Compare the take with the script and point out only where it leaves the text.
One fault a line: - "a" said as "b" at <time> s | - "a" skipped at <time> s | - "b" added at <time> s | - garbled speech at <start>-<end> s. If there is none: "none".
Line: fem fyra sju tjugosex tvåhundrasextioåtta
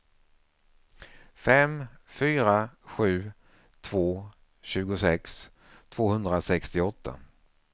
- "två" added at 3.8 s